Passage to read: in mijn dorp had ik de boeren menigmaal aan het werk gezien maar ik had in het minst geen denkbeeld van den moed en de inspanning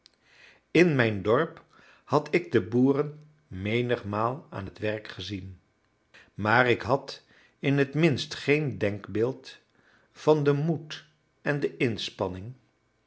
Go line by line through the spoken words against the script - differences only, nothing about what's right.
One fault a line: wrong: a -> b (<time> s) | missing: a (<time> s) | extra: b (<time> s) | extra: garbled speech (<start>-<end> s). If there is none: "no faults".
no faults